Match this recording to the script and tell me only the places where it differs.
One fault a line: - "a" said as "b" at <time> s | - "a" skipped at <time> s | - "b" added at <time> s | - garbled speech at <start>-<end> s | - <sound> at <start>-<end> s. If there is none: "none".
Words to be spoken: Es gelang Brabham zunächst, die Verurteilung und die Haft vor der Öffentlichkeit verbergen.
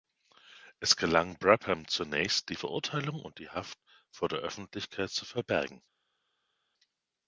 - "zu" added at 5.1 s